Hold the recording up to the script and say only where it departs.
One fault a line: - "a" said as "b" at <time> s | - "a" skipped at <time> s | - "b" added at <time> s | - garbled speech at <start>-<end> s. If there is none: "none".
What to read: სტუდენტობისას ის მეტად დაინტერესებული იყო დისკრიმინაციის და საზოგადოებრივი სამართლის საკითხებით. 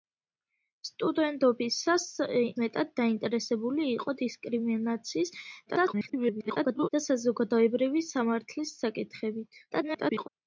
- "ის" skipped at 2.0 s
- garbled speech at 5.7-6.9 s
- garbled speech at 9.7-10.3 s